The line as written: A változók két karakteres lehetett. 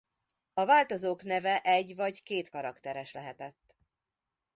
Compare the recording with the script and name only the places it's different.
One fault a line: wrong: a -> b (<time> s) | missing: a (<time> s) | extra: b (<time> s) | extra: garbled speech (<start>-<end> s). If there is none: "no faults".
extra: neve egy vagy (1.2 s)